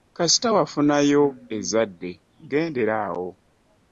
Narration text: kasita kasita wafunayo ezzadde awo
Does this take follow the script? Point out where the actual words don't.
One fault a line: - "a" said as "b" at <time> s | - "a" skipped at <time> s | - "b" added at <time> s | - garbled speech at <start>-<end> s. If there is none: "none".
- "kasita" skipped at 0.5 s
- "gendera" added at 2.5 s